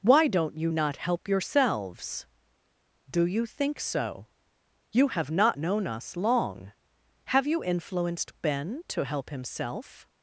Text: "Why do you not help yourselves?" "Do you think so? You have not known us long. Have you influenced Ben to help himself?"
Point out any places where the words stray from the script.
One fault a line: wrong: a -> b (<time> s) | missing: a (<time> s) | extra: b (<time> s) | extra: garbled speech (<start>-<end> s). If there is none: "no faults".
wrong: do -> don't (0.3 s)